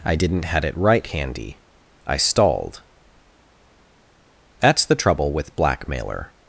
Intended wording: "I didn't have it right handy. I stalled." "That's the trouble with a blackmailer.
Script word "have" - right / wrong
wrong